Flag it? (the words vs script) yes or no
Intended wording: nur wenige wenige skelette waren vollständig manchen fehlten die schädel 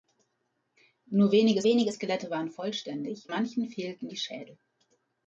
no